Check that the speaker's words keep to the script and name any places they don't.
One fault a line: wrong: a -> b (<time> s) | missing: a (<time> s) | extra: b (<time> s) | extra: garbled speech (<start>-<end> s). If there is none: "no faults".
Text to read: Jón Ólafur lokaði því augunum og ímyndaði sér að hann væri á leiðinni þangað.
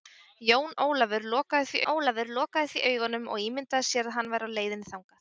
extra: Ólafur lokaði því (1.9 s)